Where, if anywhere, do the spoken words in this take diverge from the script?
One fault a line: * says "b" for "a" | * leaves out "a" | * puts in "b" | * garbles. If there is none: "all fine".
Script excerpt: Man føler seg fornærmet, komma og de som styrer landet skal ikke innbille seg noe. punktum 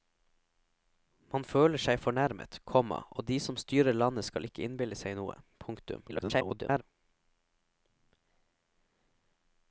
* garbles